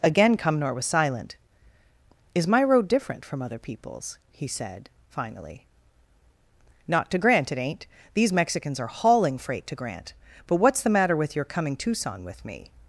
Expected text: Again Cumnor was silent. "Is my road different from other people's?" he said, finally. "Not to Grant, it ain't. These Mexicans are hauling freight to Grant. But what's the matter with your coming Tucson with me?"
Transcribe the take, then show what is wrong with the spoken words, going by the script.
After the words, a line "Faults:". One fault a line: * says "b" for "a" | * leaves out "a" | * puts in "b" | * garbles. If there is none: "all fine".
Again Cumnor was silent. "Is my road different from other people's?" he said, finally. "Not to Grant, it ain't. These Mexicans are hauling freight to Grant. But what's the matter with your coming Tucson with me?"
Faults:
all fine